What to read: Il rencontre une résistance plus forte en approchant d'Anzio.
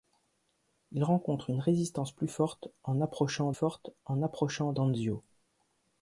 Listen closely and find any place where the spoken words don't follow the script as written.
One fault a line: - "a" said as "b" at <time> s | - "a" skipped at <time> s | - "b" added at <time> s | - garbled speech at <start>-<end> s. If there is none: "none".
- "forte en approchant" added at 3.5 s